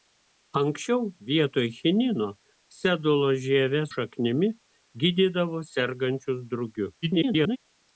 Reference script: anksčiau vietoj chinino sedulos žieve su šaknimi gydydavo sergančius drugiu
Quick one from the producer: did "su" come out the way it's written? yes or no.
no